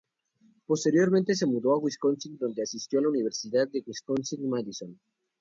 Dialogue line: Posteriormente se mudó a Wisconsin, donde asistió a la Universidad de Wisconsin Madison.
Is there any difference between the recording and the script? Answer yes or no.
no